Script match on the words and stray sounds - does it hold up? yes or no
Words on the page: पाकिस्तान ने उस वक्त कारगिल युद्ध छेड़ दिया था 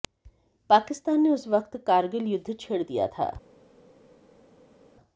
yes